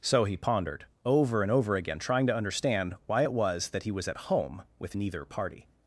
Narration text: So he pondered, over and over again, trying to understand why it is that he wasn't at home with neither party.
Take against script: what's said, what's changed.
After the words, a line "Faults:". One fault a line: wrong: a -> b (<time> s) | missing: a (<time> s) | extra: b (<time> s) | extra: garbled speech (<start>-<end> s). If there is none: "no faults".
So he pondered, over and over again, trying to understand why it was that he was at home with neither party.
Faults:
wrong: is -> was (3.3 s)
wrong: wasn't -> was (3.9 s)